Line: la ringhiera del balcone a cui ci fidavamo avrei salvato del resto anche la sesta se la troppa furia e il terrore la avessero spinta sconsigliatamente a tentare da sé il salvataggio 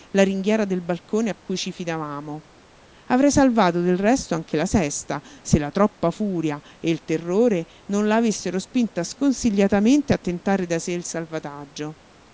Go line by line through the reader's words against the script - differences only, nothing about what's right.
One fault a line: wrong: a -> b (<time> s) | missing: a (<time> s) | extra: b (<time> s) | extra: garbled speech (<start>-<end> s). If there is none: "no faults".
extra: non (7.9 s)